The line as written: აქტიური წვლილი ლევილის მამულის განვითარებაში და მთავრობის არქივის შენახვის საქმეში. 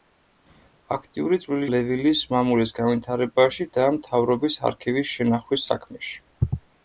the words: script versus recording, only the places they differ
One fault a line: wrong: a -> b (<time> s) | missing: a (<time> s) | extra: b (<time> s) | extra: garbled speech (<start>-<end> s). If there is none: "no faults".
no faults